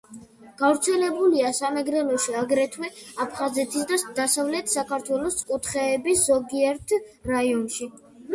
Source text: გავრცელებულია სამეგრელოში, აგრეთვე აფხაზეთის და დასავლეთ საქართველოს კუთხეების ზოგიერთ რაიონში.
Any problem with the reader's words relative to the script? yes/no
no